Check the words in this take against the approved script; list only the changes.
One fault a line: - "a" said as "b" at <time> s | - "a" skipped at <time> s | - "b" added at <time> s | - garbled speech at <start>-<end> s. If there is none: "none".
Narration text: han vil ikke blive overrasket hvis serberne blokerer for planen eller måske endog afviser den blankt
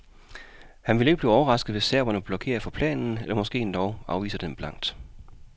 none